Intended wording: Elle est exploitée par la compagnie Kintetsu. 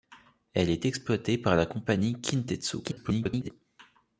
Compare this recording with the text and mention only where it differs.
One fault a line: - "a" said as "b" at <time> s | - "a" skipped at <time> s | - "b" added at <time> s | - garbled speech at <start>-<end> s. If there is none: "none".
- garbled speech at 2.8-3.5 s